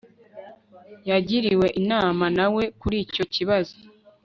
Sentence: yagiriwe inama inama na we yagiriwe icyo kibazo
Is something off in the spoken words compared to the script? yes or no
yes